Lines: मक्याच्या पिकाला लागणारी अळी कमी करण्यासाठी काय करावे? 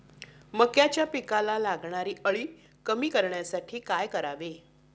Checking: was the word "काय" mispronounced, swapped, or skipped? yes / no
no